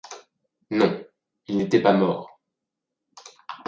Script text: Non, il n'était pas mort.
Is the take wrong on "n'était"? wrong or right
right